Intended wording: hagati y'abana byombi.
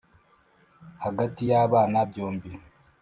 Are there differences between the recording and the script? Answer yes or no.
no